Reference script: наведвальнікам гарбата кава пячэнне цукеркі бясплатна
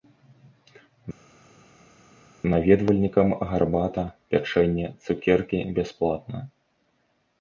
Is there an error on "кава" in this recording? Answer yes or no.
yes